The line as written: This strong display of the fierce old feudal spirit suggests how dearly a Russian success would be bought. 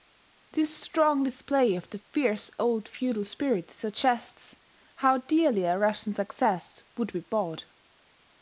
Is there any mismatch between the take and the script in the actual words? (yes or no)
no